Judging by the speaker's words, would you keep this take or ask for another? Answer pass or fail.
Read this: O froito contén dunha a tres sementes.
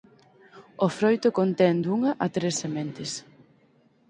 pass